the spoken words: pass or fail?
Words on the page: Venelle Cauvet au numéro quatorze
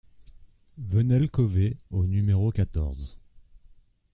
pass